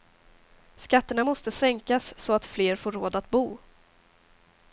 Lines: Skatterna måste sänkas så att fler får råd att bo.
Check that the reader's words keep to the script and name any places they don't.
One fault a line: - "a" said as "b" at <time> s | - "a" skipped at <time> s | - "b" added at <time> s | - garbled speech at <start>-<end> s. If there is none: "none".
none